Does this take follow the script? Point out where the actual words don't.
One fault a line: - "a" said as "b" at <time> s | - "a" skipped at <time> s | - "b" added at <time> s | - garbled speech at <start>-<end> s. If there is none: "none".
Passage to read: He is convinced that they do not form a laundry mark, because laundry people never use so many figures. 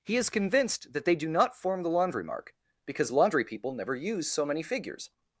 - "a" said as "the" at 1.8 s